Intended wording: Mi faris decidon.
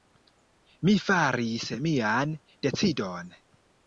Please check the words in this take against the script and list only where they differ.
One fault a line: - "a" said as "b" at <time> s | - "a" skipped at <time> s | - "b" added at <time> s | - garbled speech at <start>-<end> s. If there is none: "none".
- "mian" added at 1.9 s